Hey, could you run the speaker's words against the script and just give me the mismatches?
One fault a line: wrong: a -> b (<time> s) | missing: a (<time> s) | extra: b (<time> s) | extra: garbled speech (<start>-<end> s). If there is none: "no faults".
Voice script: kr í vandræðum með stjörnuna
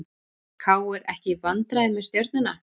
extra: ekki (1.1 s)